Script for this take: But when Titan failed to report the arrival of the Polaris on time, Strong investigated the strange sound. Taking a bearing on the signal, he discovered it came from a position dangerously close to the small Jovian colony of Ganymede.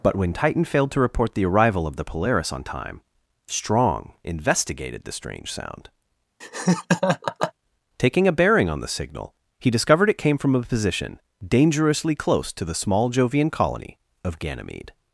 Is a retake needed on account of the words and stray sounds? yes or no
yes